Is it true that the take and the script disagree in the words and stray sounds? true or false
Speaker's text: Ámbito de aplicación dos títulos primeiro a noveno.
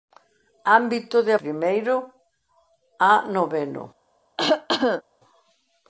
true